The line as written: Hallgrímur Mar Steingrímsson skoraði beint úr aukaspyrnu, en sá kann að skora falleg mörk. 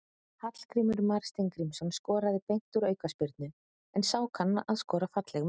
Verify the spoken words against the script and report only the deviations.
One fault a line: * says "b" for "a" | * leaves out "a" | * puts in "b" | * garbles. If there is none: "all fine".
all fine